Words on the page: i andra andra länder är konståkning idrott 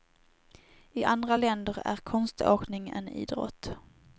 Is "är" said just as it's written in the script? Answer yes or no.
yes